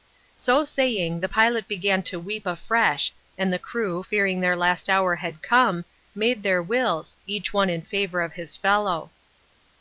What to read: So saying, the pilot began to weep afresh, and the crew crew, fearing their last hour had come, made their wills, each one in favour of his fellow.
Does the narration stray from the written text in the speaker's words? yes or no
yes